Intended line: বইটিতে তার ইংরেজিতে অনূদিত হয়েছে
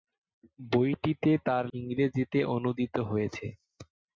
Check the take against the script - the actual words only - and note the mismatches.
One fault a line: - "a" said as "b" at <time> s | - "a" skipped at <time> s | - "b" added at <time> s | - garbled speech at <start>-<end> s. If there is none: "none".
none